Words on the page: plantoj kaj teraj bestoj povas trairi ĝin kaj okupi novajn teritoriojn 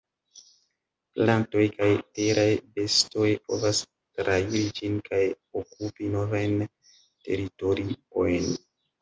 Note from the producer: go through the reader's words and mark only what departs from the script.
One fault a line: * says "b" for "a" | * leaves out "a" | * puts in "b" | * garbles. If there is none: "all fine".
all fine